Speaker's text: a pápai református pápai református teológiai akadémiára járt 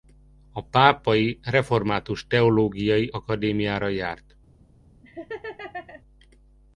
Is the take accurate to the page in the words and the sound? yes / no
no